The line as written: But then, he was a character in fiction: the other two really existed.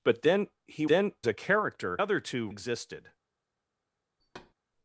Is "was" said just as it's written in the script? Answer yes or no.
no